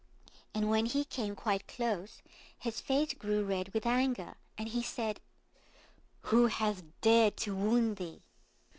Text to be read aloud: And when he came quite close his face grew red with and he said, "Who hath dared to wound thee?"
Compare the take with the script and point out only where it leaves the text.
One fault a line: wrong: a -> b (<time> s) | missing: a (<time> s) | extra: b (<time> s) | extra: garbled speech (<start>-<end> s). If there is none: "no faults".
extra: anger (3.9 s)